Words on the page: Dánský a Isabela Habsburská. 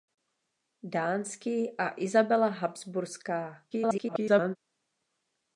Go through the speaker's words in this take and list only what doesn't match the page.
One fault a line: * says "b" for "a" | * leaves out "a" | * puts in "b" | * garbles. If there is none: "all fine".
* garbles